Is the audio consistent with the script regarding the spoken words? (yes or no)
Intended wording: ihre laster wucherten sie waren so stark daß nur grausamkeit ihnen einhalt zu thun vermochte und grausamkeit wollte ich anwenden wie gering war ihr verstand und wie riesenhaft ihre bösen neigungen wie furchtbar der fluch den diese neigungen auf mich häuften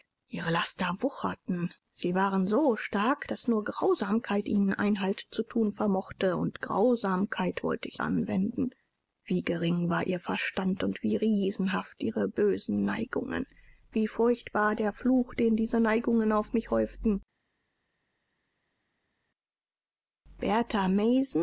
yes